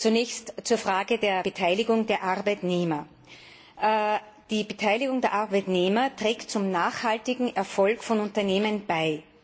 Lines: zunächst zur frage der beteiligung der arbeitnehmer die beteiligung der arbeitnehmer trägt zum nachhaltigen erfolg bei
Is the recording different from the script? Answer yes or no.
yes